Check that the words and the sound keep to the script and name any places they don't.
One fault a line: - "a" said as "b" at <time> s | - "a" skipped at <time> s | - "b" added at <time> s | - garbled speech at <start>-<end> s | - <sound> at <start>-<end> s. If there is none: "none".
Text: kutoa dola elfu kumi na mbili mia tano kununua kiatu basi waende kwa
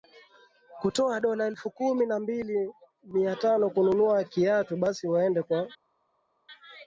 none